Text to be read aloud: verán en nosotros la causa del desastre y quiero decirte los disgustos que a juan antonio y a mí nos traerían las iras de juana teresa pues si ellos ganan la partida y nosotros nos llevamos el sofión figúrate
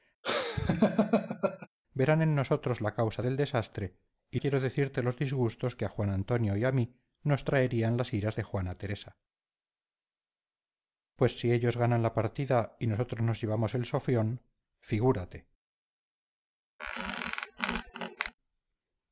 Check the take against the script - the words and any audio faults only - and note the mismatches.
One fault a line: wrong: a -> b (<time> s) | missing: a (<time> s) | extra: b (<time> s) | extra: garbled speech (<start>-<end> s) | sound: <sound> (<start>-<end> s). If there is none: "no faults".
sound: laugh (0.2-1.7 s)
sound: squeak (16.8-18.3 s)